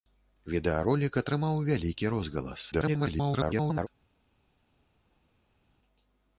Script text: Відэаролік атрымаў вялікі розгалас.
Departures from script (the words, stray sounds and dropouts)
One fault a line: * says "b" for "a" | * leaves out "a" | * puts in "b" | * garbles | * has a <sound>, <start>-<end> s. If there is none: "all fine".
* garbles